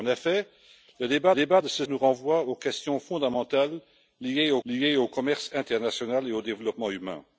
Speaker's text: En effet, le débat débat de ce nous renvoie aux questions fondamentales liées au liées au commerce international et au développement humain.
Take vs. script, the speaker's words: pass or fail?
pass